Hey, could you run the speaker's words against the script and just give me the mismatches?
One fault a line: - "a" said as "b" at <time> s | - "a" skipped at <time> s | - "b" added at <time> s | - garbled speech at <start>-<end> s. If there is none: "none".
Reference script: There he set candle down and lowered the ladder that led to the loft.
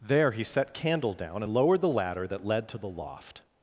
none